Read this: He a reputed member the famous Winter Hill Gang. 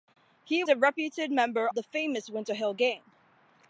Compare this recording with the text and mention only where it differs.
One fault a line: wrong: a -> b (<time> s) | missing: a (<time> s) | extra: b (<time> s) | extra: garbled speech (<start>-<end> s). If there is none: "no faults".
no faults